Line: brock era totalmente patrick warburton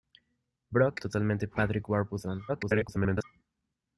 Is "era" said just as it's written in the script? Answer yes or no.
no